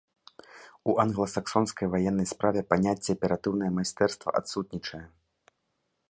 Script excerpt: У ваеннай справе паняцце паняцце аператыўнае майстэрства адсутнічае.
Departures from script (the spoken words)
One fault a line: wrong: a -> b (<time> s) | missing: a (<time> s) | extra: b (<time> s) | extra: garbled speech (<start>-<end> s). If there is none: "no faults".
extra: англасаксонскай (1.0 s)
missing: паняцце (3.1 s)